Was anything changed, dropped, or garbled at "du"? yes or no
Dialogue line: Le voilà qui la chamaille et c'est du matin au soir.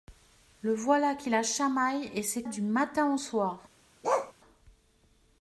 no